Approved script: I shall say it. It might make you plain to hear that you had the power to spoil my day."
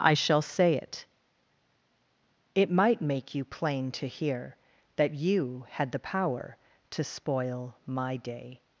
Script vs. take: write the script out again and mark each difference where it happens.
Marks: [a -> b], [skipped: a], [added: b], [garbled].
I shall say it. It might make you plain to hear that you had the power to spoil my day."